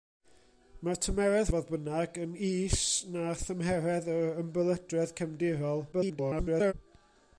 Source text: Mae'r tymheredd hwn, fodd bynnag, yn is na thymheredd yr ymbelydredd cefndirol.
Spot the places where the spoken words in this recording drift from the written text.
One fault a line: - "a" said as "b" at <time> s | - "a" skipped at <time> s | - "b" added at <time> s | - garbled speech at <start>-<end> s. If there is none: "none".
- "hwn" skipped at 1.5 s
- garbled speech at 5.9-6.7 s